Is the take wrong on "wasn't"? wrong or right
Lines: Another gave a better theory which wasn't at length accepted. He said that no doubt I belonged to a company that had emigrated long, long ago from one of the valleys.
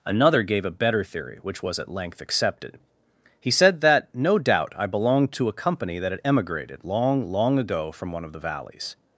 wrong